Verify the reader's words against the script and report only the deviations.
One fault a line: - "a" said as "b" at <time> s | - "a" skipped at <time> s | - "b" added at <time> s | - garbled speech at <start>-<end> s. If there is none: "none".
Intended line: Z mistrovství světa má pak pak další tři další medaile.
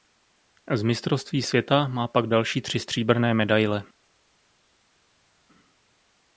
- "pak" skipped at 2.3 s
- "další" said as "stříbrné" at 2.8 s